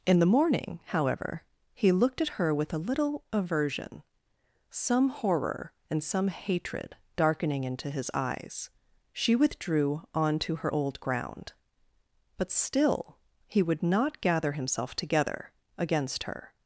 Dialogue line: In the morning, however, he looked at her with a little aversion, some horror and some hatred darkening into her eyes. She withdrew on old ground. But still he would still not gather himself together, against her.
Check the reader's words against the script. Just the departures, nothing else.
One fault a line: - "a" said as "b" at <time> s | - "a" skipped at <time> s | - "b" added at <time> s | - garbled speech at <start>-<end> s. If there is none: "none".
- "her" said as "his" at 7.9 s
- "to her" added at 10.4 s
- "still" skipped at 13.8 s